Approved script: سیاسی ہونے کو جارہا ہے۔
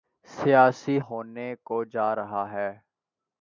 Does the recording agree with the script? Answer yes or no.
yes